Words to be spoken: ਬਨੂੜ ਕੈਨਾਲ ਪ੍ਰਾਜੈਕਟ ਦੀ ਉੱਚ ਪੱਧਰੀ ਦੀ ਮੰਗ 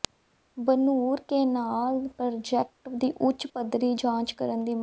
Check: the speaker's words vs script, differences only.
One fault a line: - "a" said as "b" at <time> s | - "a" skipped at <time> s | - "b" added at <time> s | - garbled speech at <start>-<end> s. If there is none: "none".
- "ਜਾਂਚ ਕਰਨ" added at 3.9 s